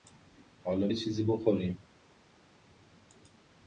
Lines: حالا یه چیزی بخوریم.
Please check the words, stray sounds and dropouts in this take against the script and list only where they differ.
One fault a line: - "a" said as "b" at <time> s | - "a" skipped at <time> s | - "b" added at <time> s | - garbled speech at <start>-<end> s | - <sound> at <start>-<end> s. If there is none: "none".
none